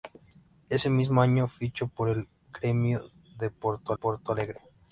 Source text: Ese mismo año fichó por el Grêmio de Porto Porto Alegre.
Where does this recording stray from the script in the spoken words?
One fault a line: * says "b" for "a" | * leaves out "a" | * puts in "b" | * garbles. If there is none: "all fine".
all fine